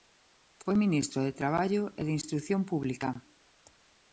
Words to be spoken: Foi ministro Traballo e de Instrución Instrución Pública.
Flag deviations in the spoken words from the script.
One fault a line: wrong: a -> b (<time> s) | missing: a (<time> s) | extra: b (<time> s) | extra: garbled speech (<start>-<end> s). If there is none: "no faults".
extra: de (1.2 s)
missing: Instrución (2.6 s)